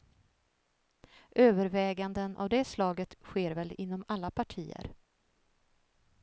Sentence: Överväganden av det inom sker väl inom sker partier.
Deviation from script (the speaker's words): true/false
true